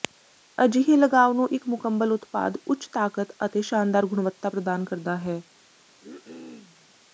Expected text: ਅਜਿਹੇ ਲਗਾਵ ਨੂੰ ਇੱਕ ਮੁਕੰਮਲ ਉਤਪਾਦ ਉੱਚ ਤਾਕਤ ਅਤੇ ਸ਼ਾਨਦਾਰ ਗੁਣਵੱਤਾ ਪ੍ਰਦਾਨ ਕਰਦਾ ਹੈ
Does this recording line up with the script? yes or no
yes